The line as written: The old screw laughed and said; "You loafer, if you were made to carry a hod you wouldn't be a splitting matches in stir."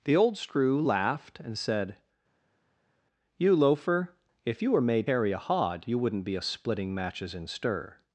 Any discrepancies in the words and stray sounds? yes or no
yes